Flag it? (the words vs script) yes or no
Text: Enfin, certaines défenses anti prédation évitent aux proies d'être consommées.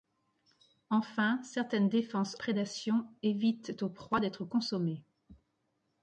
yes